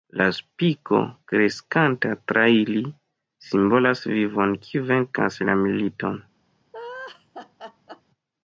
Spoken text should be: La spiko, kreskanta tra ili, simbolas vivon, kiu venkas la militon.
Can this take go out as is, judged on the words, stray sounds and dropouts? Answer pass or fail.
fail